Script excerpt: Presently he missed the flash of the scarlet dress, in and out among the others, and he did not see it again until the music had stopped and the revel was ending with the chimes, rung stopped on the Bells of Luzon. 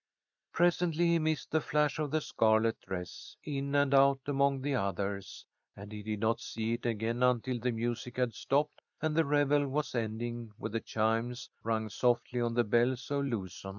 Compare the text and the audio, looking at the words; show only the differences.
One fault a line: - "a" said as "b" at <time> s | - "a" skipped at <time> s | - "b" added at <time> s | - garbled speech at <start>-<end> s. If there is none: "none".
- "stopped" said as "softly" at 11.9 s